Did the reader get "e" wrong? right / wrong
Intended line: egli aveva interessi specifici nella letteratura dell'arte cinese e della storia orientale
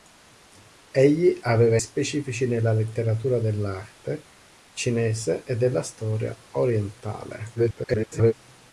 right